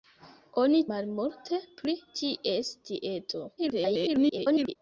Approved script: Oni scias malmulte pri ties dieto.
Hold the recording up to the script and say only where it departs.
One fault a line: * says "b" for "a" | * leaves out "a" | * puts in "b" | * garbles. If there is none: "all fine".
* leaves out "scias"
* garbles